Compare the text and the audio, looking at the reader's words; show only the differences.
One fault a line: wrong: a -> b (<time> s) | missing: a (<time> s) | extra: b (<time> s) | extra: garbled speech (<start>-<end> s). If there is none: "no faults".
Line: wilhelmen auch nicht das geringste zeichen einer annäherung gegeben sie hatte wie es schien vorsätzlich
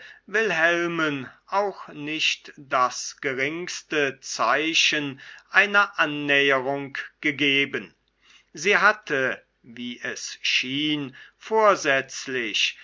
no faults